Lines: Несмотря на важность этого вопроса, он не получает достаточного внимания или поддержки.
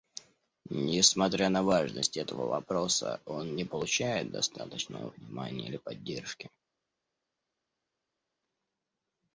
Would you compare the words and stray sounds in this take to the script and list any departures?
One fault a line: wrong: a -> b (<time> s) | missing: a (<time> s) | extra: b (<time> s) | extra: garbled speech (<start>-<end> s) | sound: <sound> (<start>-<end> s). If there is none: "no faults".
no faults